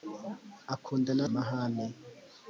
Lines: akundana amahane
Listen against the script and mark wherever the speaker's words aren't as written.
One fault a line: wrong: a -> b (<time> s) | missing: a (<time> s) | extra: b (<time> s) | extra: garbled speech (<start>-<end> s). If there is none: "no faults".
no faults